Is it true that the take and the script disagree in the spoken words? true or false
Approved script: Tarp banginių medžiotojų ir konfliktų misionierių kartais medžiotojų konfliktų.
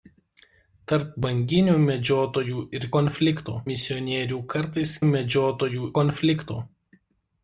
false